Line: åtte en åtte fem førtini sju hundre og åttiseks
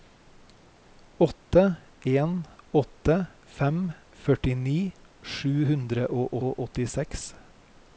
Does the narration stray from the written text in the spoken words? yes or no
yes